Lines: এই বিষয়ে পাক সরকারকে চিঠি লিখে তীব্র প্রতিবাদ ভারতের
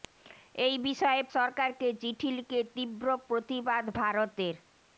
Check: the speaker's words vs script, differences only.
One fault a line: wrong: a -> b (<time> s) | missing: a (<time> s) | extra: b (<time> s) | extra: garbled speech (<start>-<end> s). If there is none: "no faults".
missing: পাক (1.2 s)